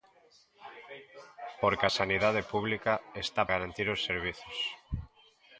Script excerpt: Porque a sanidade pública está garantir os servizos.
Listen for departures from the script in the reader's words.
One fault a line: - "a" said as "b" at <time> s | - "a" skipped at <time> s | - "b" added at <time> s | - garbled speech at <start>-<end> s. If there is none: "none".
none